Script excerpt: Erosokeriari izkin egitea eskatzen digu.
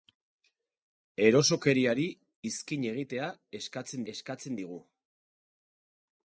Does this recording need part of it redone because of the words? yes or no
yes